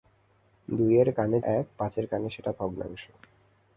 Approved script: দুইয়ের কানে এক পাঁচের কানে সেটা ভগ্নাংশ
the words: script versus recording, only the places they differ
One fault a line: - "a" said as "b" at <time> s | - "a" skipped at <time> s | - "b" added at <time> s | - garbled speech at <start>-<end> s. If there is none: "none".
none